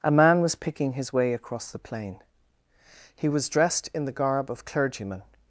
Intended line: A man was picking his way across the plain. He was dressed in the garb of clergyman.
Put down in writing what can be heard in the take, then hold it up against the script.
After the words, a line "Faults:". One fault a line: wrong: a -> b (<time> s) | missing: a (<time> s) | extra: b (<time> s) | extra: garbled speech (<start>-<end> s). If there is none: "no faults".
A man was picking his way across the plain. He was dressed in the garb of clergyman.
Faults:
no faults